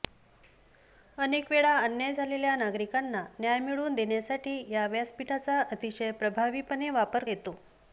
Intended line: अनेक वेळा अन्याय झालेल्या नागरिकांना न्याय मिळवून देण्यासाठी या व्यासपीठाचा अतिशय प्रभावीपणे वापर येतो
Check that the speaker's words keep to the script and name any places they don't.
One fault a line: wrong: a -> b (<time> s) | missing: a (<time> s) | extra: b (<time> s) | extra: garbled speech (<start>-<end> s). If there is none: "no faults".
no faults